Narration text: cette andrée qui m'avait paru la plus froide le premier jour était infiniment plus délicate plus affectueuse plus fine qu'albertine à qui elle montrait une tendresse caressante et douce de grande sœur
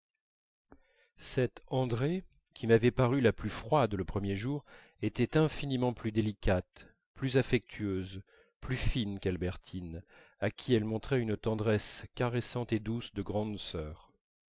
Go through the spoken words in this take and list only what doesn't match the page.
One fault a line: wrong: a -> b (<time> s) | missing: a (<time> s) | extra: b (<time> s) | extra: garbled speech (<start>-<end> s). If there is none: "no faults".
no faults